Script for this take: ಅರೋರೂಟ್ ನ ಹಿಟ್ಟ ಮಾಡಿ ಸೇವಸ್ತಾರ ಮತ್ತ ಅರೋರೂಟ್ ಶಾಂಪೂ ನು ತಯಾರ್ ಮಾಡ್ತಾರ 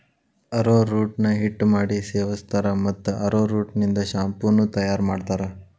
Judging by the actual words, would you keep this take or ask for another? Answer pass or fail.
fail